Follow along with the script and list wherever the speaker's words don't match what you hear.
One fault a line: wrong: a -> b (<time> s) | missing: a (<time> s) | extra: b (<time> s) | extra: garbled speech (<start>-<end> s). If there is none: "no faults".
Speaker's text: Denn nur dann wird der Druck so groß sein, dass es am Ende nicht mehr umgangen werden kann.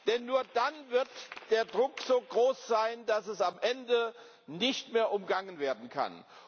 no faults